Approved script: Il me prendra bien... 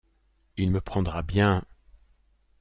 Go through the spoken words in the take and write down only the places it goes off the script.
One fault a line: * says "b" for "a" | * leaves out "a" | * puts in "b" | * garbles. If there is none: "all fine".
all fine